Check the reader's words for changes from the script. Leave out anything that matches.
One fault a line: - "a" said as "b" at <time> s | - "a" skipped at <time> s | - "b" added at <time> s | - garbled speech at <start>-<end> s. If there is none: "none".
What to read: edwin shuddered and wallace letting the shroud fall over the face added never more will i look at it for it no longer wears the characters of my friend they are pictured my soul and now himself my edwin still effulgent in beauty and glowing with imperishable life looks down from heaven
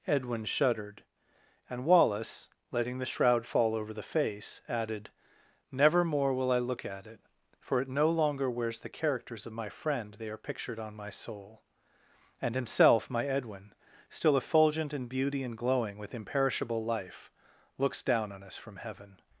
- "on" added at 10.8 s
- "now" skipped at 12.6 s
- "on us" added at 18.3 s